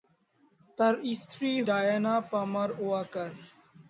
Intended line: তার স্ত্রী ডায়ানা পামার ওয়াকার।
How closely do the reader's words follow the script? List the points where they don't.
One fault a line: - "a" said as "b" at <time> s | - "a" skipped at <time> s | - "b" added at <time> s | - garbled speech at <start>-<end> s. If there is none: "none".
none